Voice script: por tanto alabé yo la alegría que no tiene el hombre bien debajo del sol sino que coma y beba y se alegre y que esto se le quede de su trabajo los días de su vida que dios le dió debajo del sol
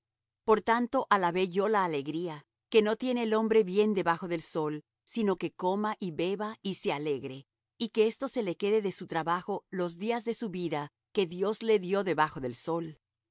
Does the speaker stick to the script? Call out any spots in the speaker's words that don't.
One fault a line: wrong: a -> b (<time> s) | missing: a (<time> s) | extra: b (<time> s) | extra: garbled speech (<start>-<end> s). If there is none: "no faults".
no faults